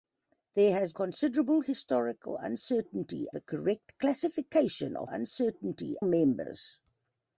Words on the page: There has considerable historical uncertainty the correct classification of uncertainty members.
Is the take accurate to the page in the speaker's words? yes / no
yes